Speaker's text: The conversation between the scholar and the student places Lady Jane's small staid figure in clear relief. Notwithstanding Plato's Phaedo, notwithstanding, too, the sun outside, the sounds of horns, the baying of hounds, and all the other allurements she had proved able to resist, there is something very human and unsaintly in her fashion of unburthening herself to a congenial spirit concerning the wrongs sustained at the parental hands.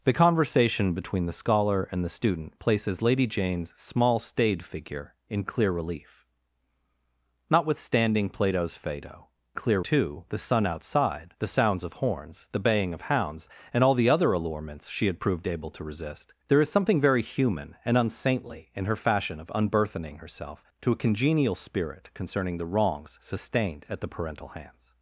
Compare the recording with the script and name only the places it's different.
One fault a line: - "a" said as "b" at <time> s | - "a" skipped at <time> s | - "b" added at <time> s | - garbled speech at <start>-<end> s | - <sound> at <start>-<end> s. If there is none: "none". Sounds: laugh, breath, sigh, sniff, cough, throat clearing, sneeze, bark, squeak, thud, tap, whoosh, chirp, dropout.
- "notwithstanding" said as "clear" at 9.5 s